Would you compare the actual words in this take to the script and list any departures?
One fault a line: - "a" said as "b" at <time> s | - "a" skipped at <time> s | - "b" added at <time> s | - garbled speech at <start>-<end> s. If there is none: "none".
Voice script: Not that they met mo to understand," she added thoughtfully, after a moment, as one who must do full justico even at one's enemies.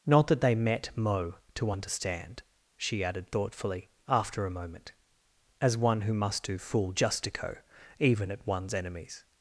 none